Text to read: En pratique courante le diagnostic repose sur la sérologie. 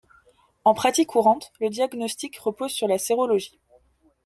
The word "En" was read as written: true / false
true